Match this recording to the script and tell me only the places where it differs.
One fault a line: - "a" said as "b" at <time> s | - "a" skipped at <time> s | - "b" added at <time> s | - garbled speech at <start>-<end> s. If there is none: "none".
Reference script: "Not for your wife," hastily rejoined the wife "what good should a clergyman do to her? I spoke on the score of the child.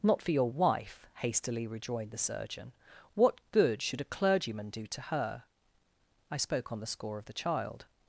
- "wife" said as "surgeon" at 2.2 s